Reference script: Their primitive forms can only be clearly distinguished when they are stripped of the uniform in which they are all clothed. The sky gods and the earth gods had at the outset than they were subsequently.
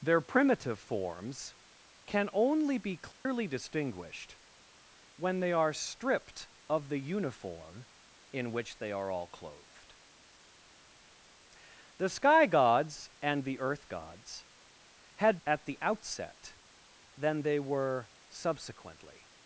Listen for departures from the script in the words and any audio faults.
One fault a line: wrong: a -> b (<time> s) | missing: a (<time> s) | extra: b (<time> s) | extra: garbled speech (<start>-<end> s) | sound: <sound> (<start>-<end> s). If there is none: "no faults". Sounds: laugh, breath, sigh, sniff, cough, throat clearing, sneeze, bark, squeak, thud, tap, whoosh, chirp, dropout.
sound: dropout (3.1-3.3 s)